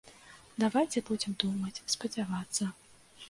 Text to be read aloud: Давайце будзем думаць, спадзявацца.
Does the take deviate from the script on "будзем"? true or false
false